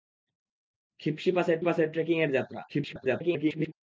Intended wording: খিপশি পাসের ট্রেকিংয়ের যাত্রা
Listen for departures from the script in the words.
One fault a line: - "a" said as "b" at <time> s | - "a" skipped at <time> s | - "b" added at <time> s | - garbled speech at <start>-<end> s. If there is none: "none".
- "পাসের" added at 1.6 s
- garbled speech at 2.7-3.7 s